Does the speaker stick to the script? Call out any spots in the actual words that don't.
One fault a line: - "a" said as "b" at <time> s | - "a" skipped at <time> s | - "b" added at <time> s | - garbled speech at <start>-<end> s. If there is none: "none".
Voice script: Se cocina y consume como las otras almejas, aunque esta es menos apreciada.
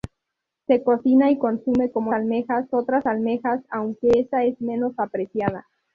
- "las" said as "almejas" at 2.1 s